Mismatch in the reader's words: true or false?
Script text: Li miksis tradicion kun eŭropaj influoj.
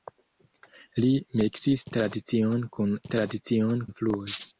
true